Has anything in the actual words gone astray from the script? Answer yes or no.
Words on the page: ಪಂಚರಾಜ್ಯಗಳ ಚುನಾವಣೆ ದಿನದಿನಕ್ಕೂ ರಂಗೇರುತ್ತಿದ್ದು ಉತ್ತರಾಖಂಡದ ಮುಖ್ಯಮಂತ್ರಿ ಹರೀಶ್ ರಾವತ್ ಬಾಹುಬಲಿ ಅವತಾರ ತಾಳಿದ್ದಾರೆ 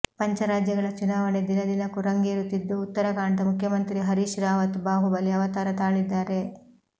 no